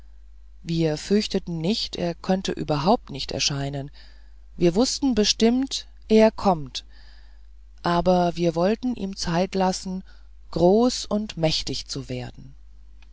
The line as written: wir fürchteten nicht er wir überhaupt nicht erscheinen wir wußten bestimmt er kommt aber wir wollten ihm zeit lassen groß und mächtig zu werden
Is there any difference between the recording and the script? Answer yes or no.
yes